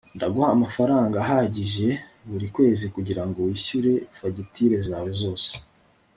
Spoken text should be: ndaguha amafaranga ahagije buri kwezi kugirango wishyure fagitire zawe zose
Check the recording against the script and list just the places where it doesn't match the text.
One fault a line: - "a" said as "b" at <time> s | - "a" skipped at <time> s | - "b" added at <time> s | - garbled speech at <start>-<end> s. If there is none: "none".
none